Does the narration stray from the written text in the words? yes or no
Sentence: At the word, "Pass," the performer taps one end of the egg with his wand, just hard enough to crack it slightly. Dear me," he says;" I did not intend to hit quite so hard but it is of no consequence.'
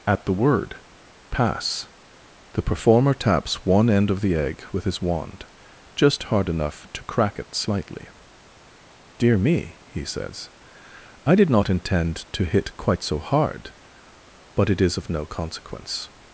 no